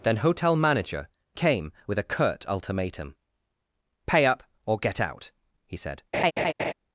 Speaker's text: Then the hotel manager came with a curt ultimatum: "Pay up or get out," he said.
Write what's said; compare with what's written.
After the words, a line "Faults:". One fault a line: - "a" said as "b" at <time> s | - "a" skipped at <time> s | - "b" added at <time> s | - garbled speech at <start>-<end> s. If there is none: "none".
Then hotel manager came with a curt ultimatum: "Pay up or get out," he said.
Faults:
- "the" skipped at 0.2 s